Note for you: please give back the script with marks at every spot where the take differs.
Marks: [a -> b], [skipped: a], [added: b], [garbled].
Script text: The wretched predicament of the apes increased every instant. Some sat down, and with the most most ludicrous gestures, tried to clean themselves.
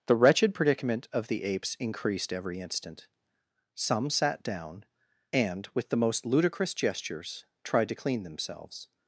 The wretched predicament of the apes increased every instant. Some sat down, and with the most [skipped: most] ludicrous gestures, tried to clean themselves.